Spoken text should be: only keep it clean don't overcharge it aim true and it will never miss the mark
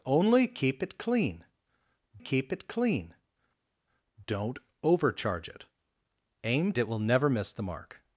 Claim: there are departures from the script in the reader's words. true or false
true